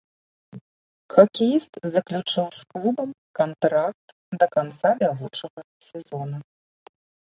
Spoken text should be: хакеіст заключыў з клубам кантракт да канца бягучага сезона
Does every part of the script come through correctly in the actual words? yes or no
yes